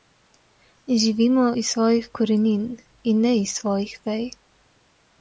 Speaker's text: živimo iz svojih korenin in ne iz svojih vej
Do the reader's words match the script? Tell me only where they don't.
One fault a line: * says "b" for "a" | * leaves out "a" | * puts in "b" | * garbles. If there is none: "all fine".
all fine